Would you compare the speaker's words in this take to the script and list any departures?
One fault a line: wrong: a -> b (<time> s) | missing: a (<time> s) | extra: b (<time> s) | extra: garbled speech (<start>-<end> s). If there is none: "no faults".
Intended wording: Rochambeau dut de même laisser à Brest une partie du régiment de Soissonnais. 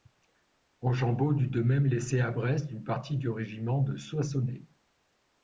no faults